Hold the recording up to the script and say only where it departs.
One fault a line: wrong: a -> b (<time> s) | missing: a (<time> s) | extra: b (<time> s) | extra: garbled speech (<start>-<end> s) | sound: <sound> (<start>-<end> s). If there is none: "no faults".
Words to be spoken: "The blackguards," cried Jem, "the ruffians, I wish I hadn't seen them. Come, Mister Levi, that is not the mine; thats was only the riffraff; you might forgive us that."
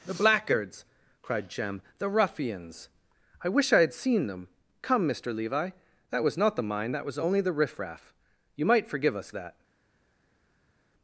wrong: hadn't -> had (3.8 s)
wrong: is -> was (6.2 s)
wrong: thats -> that (6.9 s)